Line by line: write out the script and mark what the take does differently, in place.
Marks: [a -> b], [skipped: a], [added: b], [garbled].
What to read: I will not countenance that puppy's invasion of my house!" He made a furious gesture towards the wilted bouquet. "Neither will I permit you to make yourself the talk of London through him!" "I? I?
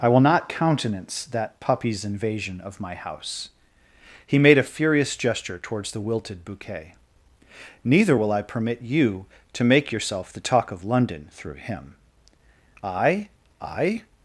I will not countenance that puppy's invasion of my house!" He made a furious gesture towards the wilted bouquet. "Neither will I permit you to make yourself the talk of London through him!" "I? I?